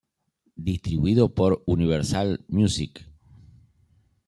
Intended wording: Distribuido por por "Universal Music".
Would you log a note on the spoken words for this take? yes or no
yes